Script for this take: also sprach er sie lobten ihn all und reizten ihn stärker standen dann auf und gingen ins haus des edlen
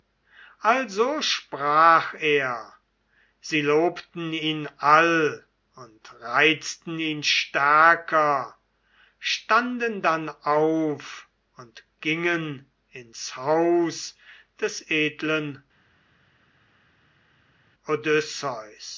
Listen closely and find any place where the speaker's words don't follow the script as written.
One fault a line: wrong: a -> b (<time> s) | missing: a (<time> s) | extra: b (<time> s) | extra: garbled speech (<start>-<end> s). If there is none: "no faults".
no faults